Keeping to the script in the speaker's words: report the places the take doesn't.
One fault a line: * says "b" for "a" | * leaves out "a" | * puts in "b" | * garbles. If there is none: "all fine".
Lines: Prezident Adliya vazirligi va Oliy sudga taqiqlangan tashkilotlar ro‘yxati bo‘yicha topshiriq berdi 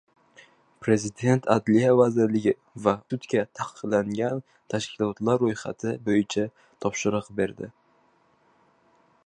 * leaves out "Oliy"